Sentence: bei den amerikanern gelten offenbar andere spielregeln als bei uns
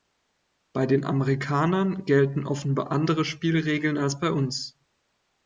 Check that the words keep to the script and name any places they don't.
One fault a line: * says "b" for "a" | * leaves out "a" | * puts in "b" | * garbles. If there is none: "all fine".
all fine